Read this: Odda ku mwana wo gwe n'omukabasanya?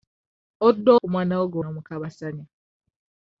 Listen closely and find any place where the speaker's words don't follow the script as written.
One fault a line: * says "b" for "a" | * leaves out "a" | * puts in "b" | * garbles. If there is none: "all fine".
all fine